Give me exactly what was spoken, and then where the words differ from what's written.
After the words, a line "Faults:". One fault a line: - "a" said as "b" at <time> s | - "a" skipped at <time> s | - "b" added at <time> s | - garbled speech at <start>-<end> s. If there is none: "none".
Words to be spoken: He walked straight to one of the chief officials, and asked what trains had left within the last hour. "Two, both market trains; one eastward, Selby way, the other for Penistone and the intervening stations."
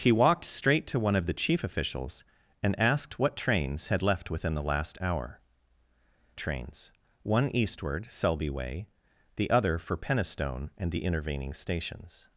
He walked straight to one of the chief officials, and asked what trains had left within the last hour. "Trains; one eastward, Selby way, the other for Penistone and the intervening stations."
Faults:
- "Two both market" skipped at 5.4 s